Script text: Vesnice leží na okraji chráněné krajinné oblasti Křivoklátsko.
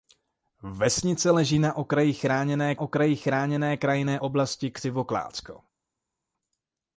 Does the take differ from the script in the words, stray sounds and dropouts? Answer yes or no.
yes